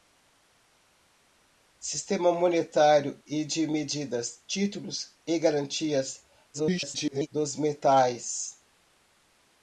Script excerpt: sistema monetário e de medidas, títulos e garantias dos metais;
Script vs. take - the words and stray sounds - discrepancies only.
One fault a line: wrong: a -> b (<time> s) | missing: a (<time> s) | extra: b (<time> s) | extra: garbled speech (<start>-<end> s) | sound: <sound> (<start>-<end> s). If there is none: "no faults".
extra: garbled speech (6.5-7.3 s)